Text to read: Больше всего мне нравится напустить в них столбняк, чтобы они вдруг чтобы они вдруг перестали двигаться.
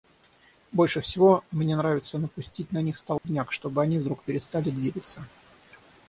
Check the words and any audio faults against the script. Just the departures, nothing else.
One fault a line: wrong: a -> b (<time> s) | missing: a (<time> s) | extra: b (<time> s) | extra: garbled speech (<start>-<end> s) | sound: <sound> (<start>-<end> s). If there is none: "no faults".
wrong: в -> на (2.7 s)
sound: dropout (3.2-3.2 s)
missing: чтобы они вдруг (4.2 s)